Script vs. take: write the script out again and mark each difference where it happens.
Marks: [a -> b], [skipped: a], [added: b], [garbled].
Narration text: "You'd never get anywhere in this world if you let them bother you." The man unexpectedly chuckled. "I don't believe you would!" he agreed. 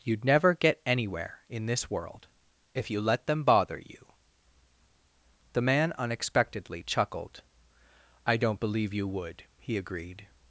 "You'd never get anywhere in this world if you let them bother you." The man unexpectedly chuckled. "I don't believe you would!" he agreed.